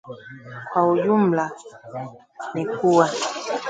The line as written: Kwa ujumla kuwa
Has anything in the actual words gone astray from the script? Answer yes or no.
yes